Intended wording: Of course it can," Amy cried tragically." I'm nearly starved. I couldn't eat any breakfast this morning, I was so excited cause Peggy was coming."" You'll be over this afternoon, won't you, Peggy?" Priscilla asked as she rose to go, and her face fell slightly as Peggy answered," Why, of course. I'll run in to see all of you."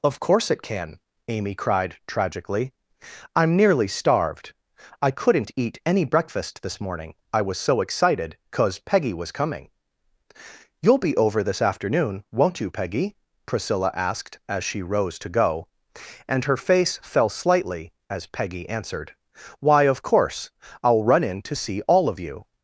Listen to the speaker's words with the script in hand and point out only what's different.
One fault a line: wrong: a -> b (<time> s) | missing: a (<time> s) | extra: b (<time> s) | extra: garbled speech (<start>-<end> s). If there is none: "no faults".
no faults